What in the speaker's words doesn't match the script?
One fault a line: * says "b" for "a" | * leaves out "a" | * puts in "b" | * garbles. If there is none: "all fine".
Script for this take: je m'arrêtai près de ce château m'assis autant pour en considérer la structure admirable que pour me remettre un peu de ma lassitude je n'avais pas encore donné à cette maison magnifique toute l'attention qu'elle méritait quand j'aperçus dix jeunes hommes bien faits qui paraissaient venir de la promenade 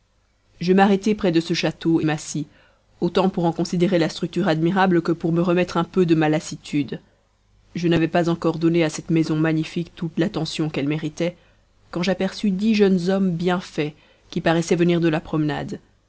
all fine